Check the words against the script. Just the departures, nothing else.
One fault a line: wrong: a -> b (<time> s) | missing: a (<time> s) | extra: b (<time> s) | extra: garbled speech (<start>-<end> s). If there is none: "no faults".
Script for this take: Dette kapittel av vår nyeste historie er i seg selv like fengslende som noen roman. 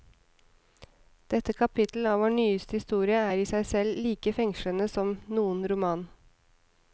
no faults